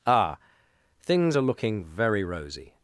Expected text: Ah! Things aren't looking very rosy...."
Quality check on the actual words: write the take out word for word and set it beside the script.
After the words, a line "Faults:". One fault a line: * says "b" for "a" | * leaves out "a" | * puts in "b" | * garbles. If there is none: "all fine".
Ah! Things are looking very rosy...."
Faults:
* says "are" for "aren't"